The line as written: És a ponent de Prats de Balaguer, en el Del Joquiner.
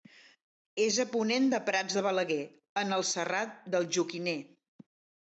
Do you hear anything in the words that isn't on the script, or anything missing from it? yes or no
yes